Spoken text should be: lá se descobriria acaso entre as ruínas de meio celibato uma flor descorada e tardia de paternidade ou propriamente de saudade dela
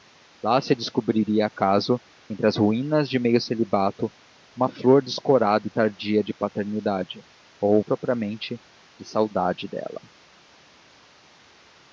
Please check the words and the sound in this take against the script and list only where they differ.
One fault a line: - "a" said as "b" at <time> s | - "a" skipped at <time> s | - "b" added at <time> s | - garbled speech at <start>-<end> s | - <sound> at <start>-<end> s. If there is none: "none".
none